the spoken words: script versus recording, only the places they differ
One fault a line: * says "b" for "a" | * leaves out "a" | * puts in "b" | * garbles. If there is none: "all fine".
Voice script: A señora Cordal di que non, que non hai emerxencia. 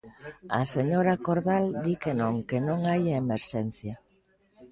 all fine